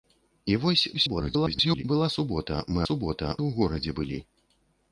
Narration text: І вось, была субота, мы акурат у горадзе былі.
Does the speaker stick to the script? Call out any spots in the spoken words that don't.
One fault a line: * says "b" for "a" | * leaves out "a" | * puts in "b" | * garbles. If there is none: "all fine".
* garbles
* says "субота" for "акурат"